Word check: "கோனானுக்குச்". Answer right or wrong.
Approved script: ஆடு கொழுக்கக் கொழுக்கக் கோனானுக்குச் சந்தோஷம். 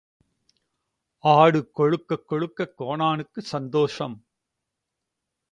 right